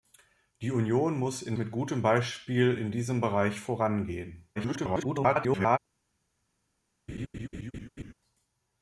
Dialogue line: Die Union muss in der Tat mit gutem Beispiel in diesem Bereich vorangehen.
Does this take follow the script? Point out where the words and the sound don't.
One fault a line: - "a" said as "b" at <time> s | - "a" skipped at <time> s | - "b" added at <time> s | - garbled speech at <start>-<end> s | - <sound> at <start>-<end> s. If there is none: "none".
- "der Tat" skipped at 1.6 s
- garbled speech at 4.6-5.8 s
- laugh at 7.1-8.1 s